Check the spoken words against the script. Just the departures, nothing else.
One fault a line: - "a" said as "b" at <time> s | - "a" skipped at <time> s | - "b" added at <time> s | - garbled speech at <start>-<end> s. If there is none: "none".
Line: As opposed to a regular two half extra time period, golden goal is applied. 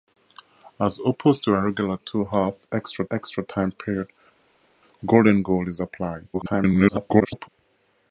- "extra" added at 3.1 s
- garbled speech at 6.3-7.5 s